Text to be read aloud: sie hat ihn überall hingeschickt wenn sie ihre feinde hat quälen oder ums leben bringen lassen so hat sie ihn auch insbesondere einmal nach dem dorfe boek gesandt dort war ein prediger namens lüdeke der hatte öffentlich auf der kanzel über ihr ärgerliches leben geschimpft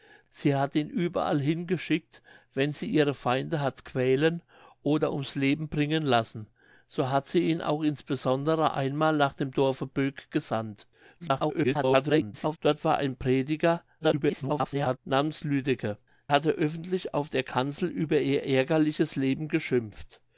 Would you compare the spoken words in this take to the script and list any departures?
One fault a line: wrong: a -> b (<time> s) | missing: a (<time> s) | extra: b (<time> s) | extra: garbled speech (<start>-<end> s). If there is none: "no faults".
extra: garbled speech (11.2-12.6 s)
extra: garbled speech (14.0-15.0 s)
missing: der (16.0 s)